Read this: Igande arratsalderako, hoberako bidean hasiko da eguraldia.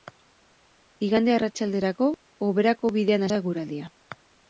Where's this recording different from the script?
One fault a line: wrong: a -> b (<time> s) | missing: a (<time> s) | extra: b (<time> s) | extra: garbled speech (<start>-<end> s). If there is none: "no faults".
missing: hasiko (3.3 s)